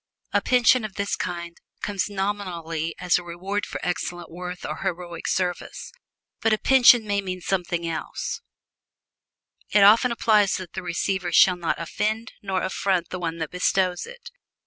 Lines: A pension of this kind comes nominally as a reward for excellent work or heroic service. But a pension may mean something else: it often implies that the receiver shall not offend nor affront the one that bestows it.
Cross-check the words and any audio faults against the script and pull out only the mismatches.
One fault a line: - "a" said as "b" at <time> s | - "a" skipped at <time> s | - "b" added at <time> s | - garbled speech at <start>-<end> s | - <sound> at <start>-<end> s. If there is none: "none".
none